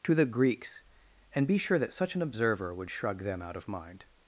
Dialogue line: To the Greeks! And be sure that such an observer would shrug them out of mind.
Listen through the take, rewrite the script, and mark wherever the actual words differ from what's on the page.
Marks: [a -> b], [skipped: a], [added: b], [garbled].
To the Greeks! And be sure that such an observer would shrug them out of mind.